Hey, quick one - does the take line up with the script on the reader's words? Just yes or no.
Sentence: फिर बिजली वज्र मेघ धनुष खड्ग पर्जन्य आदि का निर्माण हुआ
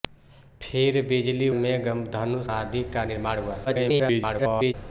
no